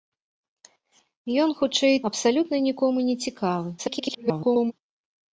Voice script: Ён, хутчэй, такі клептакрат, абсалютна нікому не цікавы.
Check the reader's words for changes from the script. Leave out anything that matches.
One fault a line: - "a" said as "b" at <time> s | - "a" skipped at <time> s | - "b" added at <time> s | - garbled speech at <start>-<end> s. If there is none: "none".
- "такі клептакрат" skipped at 1.9 s
- garbled speech at 3.8-4.7 s